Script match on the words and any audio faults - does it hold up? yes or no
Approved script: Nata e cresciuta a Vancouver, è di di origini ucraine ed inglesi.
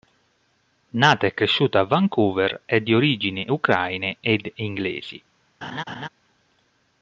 no